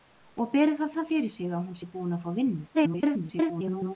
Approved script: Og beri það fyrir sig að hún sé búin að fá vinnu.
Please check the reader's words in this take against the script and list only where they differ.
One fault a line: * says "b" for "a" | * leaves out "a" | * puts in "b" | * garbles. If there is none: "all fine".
* puts in "það"
* garbles